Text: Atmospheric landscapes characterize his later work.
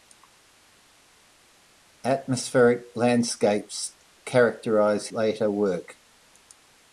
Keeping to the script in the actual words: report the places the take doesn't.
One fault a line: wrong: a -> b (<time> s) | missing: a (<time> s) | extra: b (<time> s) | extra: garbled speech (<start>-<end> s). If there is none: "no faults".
missing: his (5.1 s)